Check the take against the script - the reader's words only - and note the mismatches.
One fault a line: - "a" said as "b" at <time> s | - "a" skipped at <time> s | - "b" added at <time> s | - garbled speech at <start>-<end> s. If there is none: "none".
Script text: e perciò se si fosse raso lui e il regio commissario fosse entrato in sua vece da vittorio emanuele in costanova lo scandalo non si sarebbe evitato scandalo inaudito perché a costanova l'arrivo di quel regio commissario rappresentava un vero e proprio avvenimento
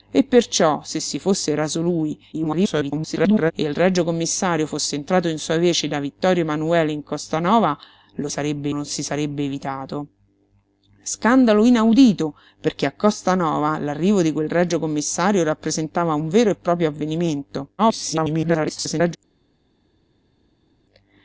- garbled speech at 2.3-3.5 s
- "scandalo" said as "sarebbe" at 8.3 s
- garbled speech at 17.8-19.2 s